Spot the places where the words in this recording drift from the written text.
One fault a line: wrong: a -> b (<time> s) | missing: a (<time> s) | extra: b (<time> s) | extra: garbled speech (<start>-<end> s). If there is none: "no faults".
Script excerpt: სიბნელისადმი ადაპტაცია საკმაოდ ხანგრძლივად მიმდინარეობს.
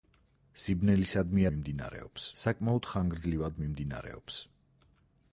wrong: ადაპტაცია -> მიმდინარეობს (1.5 s)